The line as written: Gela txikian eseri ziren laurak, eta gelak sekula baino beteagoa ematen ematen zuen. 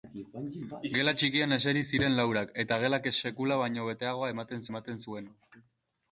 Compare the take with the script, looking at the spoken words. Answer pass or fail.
pass